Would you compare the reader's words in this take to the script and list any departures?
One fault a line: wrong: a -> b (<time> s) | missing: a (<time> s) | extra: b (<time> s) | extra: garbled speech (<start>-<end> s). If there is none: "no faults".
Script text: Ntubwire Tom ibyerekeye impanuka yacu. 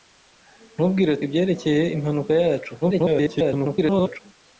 missing: Tom (1.1 s)
extra: garbled speech (2.8-4.2 s)